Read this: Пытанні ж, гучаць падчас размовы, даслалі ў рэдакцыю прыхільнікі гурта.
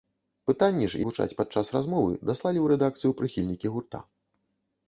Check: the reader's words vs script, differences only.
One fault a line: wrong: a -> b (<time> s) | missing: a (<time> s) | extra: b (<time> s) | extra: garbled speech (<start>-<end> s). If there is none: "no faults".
no faults